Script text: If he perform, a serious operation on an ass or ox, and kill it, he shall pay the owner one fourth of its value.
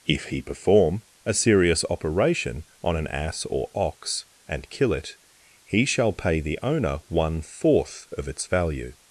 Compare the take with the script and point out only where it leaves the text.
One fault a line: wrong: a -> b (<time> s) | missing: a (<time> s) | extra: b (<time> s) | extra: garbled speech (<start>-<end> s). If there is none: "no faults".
no faults